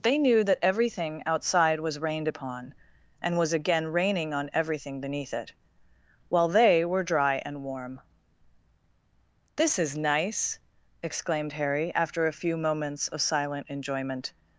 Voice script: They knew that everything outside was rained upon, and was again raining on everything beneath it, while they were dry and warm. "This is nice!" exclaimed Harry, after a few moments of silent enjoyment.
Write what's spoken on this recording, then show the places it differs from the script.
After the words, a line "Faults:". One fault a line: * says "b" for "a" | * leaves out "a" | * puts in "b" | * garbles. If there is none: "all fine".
They knew that everything outside was rained upon, and was again raining on everything beneath it, while they were dry and warm. "This is nice!" exclaimed Harry, after a few moments of silent enjoyment.
Faults:
all fine